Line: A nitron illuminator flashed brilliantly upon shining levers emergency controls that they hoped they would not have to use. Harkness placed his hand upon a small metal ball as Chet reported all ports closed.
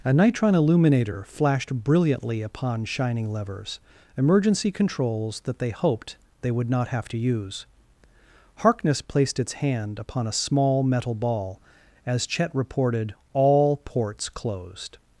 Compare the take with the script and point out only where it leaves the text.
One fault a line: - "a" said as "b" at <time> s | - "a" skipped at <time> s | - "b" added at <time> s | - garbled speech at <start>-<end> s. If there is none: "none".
- "his" said as "its" at 9.4 s